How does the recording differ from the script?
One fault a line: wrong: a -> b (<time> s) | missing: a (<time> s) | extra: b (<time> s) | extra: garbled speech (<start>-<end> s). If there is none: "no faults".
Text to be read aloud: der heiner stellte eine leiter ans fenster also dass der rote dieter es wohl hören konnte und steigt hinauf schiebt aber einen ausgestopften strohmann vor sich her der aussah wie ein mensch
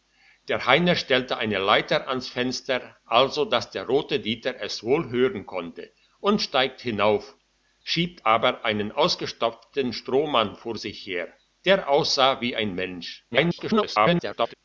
extra: garbled speech (13.3-14.5 s)